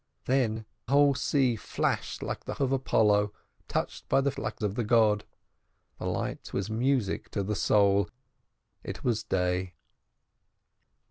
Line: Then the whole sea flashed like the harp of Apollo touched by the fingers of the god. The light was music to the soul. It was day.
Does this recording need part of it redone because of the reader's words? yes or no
yes